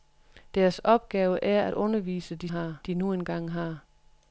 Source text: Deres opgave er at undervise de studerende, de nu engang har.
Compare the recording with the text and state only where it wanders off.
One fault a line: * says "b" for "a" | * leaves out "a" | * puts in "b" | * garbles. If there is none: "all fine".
* says "har" for "studerende"